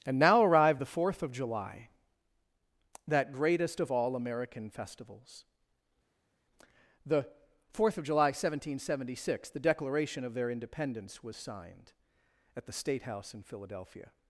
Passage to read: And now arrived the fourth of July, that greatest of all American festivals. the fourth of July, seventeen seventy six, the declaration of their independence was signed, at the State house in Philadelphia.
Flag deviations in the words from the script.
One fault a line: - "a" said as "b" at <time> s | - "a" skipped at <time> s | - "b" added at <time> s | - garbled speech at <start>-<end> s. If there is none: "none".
none